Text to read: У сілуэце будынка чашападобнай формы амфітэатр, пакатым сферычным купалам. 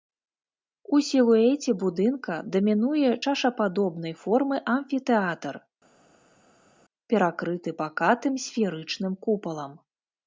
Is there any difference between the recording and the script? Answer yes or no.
yes